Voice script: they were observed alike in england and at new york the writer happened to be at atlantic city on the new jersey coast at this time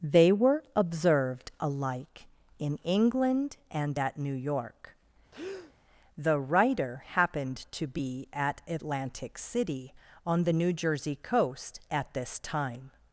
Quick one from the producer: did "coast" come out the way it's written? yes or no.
yes